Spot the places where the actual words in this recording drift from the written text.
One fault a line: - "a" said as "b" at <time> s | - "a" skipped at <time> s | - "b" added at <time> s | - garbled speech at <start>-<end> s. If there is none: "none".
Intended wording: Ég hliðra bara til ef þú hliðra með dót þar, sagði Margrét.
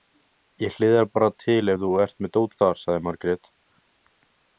- "hliðra" said as "ert" at 2.0 s